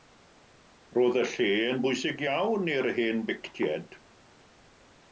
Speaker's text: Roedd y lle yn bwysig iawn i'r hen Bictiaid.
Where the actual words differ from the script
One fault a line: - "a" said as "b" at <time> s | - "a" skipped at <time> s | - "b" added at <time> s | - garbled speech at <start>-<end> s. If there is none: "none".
none